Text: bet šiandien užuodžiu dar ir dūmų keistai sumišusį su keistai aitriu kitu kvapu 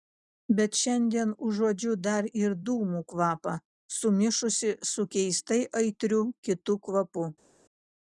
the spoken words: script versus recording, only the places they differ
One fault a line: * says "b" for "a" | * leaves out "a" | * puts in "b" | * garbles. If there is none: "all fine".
* says "kvapą" for "keistai"